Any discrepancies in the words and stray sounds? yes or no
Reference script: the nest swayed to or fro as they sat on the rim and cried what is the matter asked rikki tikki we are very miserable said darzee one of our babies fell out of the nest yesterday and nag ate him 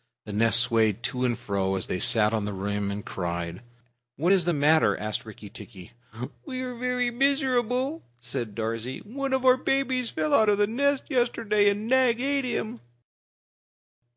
yes